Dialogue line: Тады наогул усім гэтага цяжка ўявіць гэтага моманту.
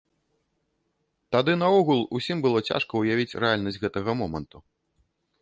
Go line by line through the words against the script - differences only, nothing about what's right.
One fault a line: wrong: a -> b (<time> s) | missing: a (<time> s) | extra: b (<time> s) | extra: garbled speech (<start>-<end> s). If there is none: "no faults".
wrong: гэтага -> было (2.5 s)
extra: рэальнасць (3.4 s)